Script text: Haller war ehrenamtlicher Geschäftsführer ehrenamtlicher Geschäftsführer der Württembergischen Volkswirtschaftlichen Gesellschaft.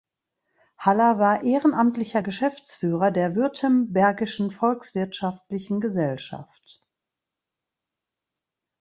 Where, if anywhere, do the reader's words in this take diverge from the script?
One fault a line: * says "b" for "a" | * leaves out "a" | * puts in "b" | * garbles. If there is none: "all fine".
* leaves out "ehrenamtlicher Geschäftsführer"